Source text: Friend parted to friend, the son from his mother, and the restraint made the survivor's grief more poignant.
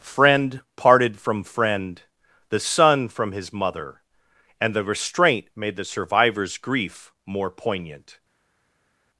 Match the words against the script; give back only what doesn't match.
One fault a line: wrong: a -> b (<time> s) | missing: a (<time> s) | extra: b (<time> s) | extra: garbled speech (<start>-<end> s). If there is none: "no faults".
wrong: to -> from (1.2 s)